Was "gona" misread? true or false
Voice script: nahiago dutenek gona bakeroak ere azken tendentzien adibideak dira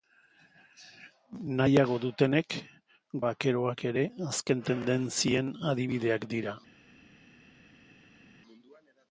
true